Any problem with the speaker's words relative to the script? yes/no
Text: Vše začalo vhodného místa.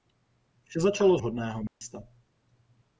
no